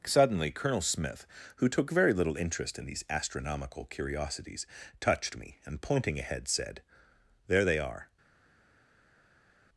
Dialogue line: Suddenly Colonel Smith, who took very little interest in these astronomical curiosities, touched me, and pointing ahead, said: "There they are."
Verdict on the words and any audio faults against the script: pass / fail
pass